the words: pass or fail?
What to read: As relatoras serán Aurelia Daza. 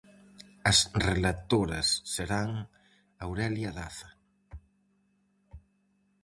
pass